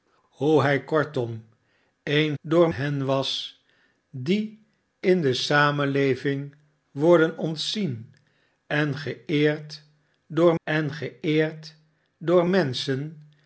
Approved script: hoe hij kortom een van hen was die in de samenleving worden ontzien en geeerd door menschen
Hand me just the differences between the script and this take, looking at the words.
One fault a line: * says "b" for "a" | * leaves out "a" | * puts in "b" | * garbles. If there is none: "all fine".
* says "door" for "van"
* puts in "en geeerd door"